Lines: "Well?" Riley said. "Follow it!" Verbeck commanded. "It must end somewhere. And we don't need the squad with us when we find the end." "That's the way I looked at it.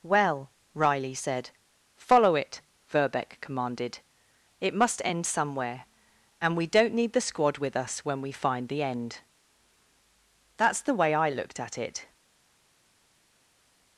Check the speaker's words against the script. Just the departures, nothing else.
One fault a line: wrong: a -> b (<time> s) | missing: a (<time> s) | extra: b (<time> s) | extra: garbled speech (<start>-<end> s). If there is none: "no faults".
no faults